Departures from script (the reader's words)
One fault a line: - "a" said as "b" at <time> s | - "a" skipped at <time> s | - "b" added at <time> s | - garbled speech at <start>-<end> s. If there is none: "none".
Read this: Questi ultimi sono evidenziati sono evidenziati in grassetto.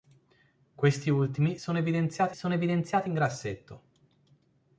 none